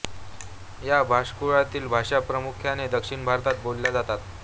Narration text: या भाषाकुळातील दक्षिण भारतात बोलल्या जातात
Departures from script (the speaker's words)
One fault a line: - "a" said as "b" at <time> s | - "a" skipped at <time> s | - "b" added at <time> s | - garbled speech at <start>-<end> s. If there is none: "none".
- "भाषा प्रामुख्याने" added at 1.9 s